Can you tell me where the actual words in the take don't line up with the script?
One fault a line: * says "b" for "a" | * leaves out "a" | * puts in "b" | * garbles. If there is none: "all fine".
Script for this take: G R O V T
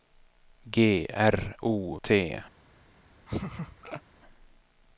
* leaves out "V"